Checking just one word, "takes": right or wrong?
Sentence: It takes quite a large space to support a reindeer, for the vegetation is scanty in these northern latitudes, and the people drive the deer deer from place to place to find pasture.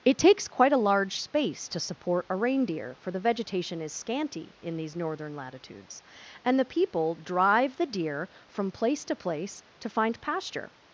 right